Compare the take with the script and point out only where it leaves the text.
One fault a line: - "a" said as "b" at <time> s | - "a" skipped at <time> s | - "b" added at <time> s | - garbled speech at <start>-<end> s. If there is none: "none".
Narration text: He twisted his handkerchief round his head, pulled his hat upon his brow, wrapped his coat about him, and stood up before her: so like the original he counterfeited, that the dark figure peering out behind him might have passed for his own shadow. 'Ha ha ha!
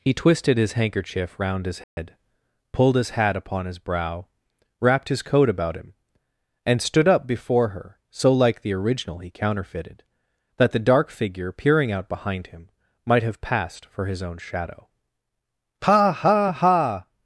none